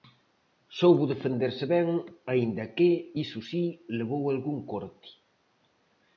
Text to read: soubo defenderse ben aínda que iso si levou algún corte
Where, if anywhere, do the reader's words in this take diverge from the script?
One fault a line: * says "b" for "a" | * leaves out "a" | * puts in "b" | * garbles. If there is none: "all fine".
all fine